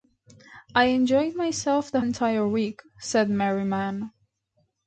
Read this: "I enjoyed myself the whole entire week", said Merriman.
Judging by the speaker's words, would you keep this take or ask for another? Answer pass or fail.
fail